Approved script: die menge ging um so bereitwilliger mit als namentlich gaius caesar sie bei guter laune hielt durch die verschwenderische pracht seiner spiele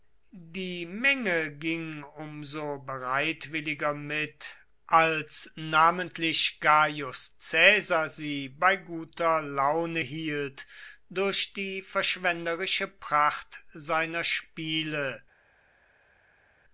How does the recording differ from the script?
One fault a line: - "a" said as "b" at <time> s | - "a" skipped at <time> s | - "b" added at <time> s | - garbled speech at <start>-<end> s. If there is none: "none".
none